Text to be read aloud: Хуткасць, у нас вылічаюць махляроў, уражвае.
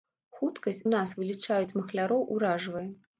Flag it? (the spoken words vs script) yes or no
no